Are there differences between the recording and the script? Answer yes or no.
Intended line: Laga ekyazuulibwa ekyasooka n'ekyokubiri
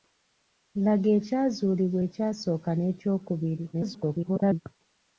yes